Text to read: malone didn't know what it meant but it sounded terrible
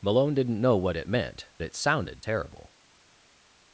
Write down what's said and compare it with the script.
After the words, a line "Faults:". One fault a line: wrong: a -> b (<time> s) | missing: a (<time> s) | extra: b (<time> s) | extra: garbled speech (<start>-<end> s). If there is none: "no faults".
malone didn't know what it meant it sounded terrible
Faults:
missing: but (1.5 s)